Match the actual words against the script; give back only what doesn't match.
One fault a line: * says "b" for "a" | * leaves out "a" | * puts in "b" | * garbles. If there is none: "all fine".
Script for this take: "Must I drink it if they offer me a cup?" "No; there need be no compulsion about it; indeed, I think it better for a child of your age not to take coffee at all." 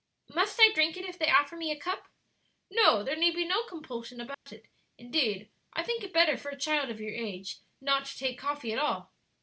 all fine